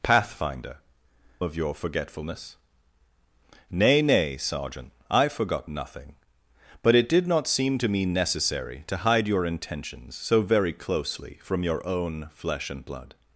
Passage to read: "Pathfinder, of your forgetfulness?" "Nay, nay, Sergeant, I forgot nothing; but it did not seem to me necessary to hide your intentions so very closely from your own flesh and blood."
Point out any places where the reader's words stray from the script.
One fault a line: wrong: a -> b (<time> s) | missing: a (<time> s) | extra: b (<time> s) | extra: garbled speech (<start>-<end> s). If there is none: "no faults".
no faults